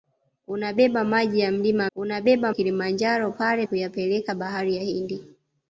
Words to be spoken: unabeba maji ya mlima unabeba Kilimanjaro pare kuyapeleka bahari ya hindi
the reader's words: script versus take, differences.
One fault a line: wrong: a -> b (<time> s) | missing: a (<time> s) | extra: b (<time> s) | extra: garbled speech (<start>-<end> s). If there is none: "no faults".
no faults